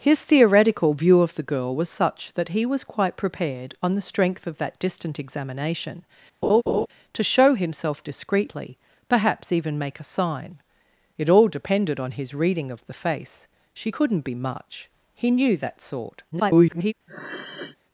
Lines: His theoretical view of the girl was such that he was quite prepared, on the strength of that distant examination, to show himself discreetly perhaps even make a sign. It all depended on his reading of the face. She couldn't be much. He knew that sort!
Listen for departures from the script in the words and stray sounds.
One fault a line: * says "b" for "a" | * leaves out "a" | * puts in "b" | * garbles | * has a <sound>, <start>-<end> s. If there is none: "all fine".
* has a laugh, 6.4-6.9 s
* garbles
* has a sniff, 17.1-17.8 s